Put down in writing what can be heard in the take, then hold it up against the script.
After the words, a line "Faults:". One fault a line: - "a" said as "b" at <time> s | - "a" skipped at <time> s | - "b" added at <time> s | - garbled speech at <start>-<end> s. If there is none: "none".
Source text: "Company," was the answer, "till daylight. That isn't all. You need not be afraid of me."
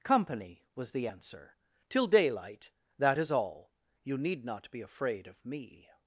"Company," was the answer, "till daylight. That is all. You need not be afraid of me."
Faults:
- "isn't" said as "is" at 3.2 s